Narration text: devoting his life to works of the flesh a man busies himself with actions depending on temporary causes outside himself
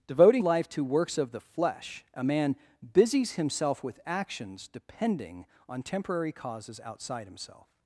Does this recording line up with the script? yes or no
no